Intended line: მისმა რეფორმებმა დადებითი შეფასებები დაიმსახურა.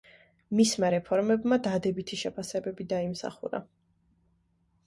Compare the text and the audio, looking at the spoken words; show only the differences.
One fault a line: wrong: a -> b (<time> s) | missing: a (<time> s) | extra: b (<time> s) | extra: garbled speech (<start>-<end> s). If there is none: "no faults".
no faults